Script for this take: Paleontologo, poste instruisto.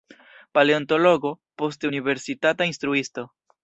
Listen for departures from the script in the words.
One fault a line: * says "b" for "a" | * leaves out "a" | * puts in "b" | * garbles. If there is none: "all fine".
* puts in "universitata"